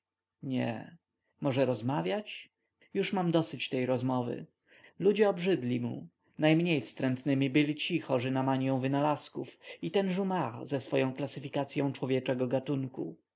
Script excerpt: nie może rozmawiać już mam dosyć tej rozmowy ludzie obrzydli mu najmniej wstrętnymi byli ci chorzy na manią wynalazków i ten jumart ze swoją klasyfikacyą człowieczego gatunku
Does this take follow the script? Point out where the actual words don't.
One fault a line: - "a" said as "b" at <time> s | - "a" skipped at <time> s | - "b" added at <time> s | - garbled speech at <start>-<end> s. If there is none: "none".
none